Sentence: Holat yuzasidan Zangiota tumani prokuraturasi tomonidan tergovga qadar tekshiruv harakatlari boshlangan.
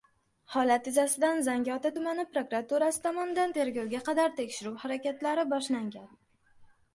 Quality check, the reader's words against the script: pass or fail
pass